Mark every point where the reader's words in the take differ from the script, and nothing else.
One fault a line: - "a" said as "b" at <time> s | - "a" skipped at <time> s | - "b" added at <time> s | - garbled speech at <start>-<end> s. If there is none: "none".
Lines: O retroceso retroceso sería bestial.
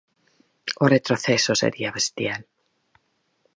- "retroceso" skipped at 1.5 s